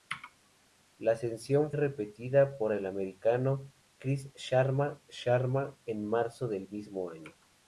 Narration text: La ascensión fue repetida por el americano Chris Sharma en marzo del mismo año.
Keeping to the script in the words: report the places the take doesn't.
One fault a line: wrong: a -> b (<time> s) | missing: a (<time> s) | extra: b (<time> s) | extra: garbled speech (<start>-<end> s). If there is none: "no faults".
missing: fue (1.7 s)
extra: Sharma (5.1 s)